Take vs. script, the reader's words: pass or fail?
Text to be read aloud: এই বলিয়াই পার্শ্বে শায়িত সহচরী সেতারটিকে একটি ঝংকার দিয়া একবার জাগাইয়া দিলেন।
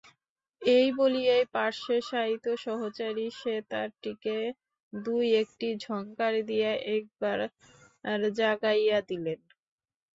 fail